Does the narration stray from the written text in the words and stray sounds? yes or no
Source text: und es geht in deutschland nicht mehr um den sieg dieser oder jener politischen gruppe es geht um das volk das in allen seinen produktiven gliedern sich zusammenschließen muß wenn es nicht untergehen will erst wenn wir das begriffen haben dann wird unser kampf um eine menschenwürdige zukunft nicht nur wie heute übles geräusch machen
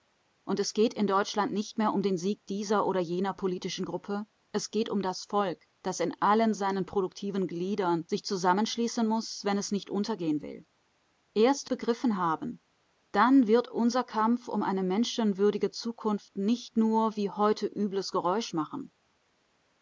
yes